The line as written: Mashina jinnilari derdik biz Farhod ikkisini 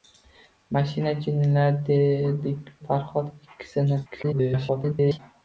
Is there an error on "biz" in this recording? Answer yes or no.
yes